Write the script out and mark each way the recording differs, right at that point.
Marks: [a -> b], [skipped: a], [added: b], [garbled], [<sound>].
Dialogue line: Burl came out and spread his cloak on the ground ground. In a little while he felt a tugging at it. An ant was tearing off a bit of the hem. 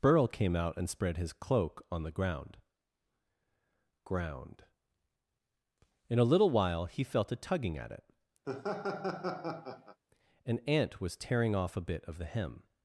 Burl came out and spread his cloak on the ground ground. In a little while he felt a tugging at it. [laugh] An ant was tearing off a bit of the hem.